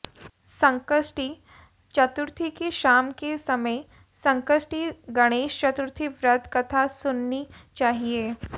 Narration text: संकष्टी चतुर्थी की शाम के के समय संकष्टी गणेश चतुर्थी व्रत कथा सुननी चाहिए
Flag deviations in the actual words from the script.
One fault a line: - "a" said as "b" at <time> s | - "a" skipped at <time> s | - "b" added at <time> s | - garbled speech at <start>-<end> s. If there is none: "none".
- "के" skipped at 3.4 s